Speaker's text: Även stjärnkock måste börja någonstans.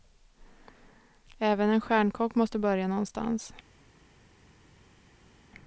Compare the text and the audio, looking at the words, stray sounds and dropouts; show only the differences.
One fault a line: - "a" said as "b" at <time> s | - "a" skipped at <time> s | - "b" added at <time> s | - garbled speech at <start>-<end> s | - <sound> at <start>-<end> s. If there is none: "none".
- "en" added at 1.7 s